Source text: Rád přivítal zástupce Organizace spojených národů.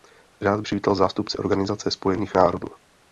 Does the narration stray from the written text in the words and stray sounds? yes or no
no